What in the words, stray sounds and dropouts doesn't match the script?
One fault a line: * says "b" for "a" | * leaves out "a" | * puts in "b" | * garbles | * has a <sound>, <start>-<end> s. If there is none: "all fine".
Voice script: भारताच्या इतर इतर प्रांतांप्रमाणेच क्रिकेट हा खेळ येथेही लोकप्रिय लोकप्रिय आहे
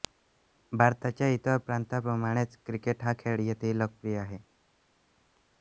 * leaves out "इतर"
* leaves out "लोकप्रिय"